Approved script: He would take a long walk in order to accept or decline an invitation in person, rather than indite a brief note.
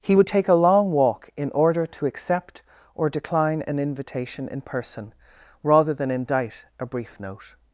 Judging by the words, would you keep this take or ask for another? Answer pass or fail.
pass